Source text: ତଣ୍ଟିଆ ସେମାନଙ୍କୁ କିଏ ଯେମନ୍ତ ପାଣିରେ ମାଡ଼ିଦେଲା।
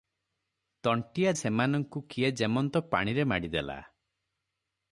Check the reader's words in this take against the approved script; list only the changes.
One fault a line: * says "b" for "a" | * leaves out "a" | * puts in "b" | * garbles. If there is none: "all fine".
all fine